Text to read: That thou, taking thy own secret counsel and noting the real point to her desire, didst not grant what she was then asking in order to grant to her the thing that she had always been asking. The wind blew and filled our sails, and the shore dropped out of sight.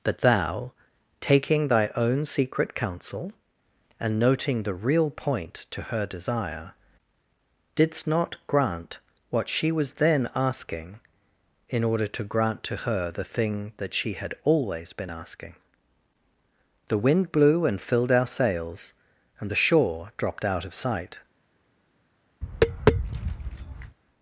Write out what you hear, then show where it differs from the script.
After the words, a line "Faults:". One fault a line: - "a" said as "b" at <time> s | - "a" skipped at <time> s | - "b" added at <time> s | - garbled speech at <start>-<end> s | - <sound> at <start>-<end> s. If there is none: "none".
That thou, taking thy own secret counsel and noting the real point to her desire, didst not grant what she was then asking in order to grant to her the thing that she had always been asking. The wind blew and filled our sails, and the shore dropped out of sight.
Faults:
- tap at 22.4-24.0 s